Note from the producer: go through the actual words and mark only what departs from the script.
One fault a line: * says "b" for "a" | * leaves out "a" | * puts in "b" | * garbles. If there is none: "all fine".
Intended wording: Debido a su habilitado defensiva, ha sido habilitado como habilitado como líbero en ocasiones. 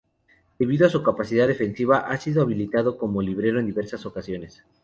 * says "capacidad" for "habilitado"
* leaves out "habilitado como"
* puts in "diversas"